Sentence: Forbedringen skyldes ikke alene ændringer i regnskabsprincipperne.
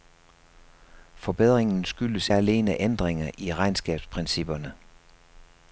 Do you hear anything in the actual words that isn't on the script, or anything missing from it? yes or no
yes